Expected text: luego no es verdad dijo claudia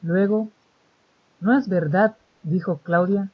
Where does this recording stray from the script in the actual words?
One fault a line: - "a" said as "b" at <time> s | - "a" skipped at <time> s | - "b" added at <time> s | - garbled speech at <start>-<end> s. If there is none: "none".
none